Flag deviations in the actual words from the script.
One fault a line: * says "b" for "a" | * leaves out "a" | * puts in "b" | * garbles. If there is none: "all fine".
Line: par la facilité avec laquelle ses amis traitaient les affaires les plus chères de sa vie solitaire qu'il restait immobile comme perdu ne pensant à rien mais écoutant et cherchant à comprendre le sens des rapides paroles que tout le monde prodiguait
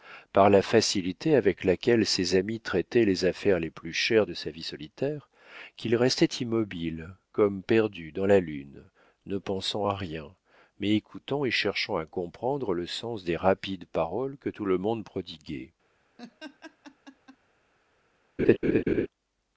* puts in "dans la lune"